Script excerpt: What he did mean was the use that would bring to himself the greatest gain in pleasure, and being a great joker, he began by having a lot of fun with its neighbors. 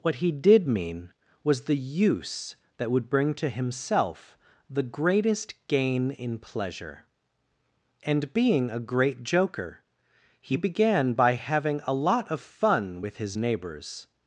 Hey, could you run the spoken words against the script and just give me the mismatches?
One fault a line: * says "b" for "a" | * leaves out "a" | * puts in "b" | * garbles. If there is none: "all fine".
* says "his" for "its"